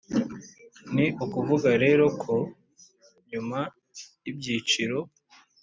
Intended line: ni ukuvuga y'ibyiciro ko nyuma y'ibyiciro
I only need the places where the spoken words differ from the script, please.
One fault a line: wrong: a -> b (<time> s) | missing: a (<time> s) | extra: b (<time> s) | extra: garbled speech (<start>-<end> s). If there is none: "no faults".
wrong: y'ibyiciro -> rero (1.8 s)